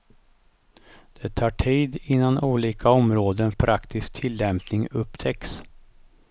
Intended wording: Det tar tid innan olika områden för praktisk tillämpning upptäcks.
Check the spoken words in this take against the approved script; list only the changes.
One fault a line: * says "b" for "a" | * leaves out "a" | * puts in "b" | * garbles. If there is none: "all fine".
* leaves out "för"